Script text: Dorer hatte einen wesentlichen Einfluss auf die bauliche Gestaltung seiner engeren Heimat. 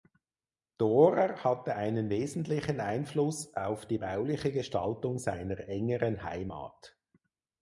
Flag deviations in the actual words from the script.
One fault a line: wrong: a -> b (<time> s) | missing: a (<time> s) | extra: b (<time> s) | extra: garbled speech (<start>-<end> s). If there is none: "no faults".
no faults